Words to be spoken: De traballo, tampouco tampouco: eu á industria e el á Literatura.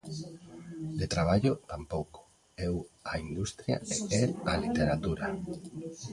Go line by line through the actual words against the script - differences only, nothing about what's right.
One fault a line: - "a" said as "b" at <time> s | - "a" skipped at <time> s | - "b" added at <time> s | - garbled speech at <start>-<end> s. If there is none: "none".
- "tampouco" skipped at 2.2 s